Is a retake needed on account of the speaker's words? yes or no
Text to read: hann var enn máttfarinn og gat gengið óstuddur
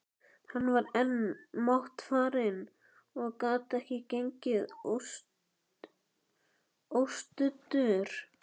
yes